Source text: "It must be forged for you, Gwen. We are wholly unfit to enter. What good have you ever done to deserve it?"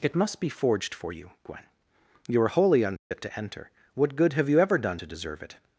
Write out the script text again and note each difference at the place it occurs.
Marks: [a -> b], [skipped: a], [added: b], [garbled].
"It must be forged for you, Gwen. [We -> You] are wholly unfit to enter. What good have you ever done to deserve it?"